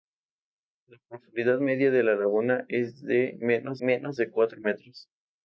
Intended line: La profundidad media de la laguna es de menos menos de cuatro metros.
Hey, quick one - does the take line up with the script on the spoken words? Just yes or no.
yes